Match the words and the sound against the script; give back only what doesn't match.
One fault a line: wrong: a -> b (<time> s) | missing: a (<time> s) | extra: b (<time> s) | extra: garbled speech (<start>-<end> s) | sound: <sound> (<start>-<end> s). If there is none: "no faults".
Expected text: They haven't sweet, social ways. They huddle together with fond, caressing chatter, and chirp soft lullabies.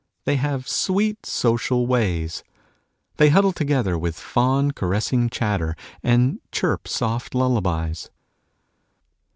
wrong: haven't -> have (0.4 s)